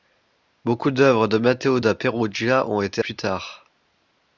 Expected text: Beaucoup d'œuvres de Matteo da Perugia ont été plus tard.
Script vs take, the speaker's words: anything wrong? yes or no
no